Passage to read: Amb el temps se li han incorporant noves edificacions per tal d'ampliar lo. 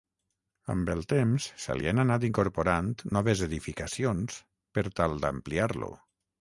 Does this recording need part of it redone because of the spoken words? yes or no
yes